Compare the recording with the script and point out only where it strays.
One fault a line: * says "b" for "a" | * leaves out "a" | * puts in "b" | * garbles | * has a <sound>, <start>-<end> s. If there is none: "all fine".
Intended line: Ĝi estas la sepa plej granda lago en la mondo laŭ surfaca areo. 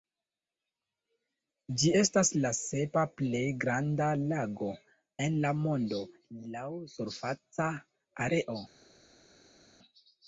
all fine